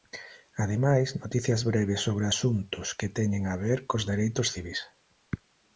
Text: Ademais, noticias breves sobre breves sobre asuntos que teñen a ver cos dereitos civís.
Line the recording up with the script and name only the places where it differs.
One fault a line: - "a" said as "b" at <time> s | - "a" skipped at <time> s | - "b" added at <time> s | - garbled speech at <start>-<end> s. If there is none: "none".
- "breves sobre" skipped at 2.2 s